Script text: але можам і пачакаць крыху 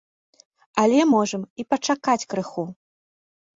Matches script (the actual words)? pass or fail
pass